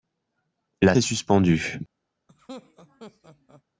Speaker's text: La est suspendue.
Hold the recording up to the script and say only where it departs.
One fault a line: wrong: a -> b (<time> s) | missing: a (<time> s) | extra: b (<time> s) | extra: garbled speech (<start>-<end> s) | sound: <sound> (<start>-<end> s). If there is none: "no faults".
sound: laugh (2.3-3.6 s)